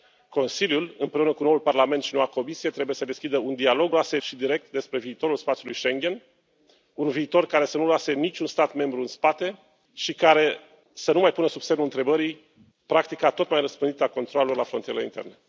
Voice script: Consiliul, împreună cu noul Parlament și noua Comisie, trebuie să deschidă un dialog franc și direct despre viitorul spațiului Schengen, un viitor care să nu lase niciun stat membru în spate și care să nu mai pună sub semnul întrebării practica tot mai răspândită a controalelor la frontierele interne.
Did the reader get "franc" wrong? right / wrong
wrong